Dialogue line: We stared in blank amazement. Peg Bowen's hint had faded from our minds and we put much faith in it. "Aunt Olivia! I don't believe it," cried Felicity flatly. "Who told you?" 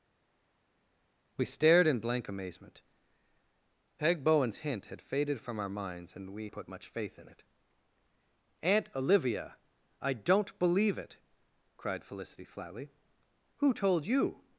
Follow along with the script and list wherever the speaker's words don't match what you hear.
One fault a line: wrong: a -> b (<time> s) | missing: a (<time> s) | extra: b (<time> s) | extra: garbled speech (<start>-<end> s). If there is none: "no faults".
no faults